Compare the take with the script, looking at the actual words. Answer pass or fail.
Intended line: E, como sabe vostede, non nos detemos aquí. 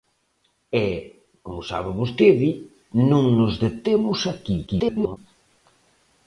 fail